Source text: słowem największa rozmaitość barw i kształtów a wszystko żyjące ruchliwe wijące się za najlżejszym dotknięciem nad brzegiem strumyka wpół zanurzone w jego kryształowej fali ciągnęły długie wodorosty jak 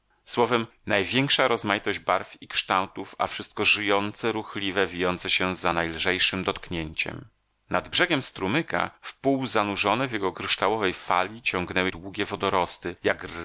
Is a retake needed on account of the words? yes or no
no